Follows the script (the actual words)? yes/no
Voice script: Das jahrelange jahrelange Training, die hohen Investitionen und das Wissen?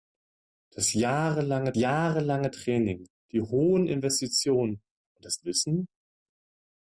yes